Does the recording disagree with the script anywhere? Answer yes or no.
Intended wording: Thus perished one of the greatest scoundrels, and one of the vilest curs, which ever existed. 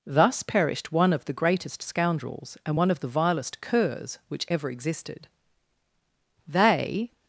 yes